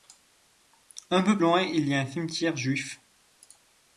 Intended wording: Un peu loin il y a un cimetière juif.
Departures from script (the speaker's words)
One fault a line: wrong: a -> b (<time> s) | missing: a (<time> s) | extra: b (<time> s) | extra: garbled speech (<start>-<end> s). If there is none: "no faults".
no faults